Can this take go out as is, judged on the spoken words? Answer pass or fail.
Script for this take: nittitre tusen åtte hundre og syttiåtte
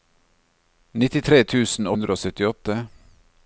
fail